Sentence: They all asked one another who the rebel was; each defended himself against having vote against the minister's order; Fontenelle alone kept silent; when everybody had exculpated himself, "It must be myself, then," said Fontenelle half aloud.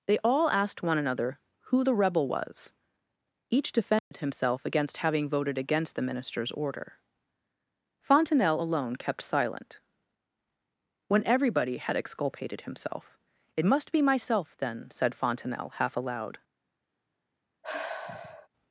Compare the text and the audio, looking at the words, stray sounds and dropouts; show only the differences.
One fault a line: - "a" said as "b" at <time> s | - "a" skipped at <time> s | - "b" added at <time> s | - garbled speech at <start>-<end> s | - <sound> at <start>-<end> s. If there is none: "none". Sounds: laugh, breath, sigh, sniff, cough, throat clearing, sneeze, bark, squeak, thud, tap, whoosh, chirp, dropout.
- dropout at 4.0-4.1 s
- "vote" said as "voted" at 5.3 s
- sigh at 17.6-18.5 s